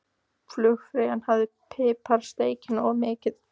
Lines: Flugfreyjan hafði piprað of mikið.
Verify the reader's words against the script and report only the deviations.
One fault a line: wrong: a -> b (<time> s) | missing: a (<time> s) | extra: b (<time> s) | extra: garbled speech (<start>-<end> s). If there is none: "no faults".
extra: steikina (2.3 s)